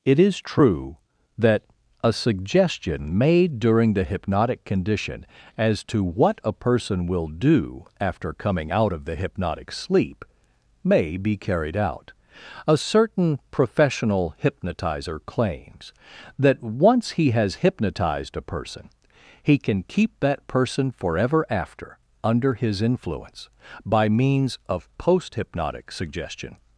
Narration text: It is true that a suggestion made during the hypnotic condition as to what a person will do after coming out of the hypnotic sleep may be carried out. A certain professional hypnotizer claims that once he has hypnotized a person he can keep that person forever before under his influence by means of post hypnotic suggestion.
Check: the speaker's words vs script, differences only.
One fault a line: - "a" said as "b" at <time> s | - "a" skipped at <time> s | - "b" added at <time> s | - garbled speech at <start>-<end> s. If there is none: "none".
- "before" said as "after" at 21.5 s